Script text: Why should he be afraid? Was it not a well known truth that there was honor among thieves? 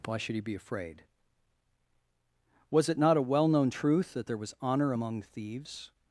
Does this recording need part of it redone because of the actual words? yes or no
no